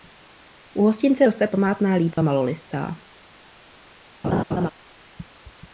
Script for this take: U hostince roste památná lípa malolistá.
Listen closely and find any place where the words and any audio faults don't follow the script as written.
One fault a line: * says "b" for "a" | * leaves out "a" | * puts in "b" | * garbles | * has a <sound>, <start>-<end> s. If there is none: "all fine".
* has a dropout, 2.1-2.2 s
* has a laugh, 4.2-4.7 s